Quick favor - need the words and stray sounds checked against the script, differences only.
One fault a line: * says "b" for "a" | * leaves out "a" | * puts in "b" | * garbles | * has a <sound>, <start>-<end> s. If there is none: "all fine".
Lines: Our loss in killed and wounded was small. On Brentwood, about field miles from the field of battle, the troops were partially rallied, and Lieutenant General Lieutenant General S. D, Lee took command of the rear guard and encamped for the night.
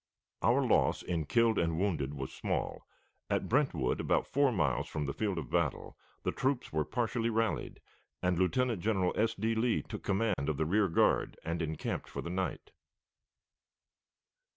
* says "At" for "On"
* says "four" for "field"
* leaves out "Lieutenant General"
* has a dropout, 10.3-10.4 s